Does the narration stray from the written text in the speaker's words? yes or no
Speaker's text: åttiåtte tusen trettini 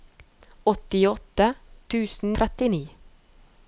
no